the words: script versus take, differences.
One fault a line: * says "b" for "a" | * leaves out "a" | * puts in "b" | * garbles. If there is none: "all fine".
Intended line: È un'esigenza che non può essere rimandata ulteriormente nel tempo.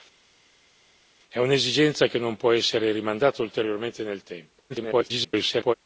* garbles